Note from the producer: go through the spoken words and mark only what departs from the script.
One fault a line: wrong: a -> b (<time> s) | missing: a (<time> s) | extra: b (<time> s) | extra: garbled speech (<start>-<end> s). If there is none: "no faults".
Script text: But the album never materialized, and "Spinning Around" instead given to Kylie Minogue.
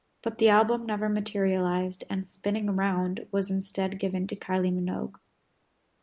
extra: was (3.3 s)